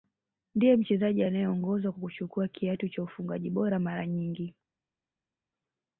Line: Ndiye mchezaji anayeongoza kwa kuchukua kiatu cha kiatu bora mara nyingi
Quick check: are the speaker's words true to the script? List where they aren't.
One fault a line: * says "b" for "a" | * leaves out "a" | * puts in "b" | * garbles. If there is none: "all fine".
* says "ufungaji" for "kiatu"